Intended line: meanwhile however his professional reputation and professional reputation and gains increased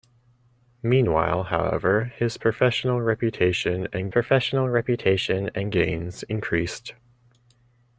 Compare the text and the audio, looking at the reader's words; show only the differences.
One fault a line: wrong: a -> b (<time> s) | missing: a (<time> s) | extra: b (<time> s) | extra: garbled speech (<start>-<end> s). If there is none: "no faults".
no faults